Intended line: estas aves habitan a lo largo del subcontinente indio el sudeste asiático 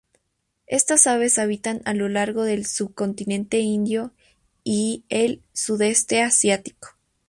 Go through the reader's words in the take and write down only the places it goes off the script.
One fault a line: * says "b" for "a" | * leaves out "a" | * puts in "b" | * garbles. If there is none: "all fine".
* puts in "y"